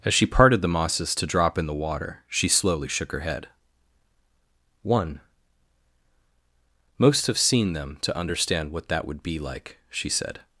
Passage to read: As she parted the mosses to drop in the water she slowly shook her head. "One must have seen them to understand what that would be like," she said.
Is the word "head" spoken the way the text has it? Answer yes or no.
yes